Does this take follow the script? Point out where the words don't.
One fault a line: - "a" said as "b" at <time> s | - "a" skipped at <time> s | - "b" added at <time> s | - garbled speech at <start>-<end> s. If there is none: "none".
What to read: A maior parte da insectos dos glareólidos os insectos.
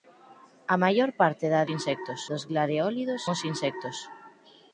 none